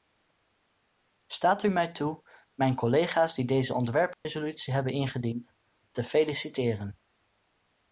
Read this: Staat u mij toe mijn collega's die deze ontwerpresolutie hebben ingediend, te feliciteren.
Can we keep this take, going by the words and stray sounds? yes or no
no